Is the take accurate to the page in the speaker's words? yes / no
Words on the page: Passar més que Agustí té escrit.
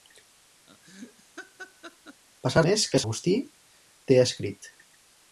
yes